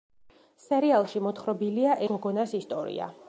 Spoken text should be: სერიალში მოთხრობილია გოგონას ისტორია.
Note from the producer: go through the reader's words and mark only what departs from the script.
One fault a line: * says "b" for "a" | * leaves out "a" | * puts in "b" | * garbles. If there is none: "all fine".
all fine